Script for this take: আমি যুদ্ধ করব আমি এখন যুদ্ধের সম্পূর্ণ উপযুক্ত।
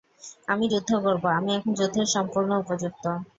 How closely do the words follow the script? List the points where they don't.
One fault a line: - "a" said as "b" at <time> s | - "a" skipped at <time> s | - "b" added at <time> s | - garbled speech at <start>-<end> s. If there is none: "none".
none